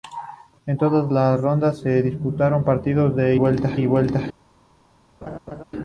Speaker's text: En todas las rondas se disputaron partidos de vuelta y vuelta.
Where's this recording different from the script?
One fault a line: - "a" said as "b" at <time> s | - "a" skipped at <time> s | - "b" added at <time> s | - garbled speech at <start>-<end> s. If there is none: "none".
none